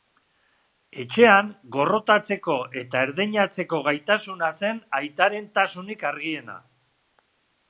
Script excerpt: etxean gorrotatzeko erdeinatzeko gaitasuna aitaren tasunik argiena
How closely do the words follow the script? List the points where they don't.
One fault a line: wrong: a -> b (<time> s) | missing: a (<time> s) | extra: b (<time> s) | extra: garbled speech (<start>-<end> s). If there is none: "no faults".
extra: eta (2.8 s)
extra: zen (4.6 s)